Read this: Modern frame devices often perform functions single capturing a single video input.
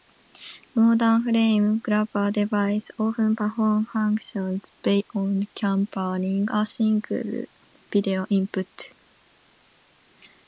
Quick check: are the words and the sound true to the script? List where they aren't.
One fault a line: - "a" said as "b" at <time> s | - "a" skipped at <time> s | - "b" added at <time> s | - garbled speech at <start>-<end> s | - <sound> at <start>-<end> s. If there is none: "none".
- "grabber" added at 1.8 s
- "single" said as "beyond" at 4.8 s